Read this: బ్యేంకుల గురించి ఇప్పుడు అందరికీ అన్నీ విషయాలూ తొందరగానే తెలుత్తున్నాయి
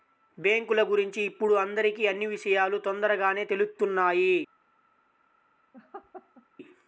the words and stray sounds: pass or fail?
fail